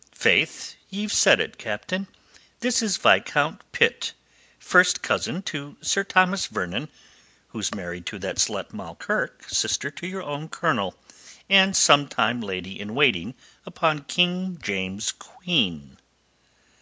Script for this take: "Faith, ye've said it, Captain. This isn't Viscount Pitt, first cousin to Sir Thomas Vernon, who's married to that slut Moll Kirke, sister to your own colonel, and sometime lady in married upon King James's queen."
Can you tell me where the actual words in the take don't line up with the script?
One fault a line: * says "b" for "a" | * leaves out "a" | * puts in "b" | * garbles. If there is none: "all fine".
* says "is" for "isn't"
* says "waiting" for "married"